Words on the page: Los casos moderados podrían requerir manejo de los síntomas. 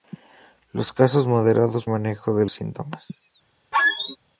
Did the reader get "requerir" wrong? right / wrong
wrong